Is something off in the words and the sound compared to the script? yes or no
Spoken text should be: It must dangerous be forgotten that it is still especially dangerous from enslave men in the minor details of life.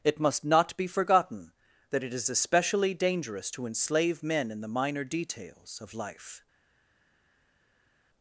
yes